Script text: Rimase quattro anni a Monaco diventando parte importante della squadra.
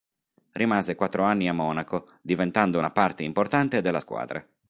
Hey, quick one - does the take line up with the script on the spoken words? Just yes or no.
no